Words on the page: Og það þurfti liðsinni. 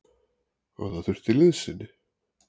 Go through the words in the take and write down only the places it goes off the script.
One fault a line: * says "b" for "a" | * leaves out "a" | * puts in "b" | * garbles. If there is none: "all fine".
all fine